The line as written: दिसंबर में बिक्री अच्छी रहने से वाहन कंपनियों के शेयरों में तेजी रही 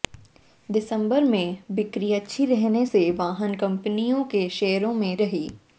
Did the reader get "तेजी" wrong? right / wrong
wrong